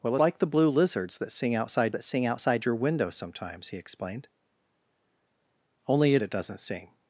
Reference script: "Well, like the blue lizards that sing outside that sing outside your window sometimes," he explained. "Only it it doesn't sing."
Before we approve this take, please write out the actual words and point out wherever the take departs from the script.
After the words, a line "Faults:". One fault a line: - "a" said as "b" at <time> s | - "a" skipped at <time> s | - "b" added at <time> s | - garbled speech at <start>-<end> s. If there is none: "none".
"Well, like the blue lizards that sing outside that sing outside your window sometimes," he explained. "Only it it doesn't sing."
Faults:
none